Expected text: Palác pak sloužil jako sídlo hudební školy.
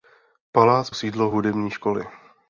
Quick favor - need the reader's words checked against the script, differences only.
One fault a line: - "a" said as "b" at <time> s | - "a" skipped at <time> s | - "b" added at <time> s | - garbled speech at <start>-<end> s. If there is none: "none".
- "pak sloužil jako" skipped at 0.9 s